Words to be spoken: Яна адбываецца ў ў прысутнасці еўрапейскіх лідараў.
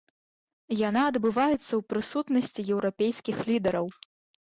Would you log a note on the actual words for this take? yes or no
yes